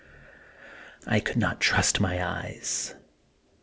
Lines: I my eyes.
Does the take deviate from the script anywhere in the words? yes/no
yes